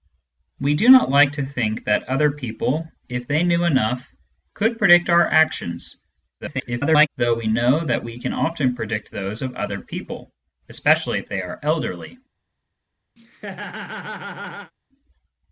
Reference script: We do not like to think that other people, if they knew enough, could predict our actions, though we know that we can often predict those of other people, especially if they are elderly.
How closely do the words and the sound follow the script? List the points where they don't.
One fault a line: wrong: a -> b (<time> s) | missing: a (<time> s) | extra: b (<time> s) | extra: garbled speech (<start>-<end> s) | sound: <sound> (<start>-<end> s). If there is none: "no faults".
extra: garbled speech (6.4-7.1 s)
sound: laugh (13.2-14.7 s)